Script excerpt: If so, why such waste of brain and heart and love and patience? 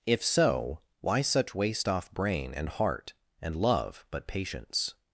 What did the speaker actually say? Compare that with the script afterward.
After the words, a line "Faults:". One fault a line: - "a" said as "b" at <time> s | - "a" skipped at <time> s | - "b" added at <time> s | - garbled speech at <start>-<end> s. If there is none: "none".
If so, why such waste off brain and heart and love but patience?
Faults:
- "of" said as "off" at 1.9 s
- "and" said as "but" at 4.1 s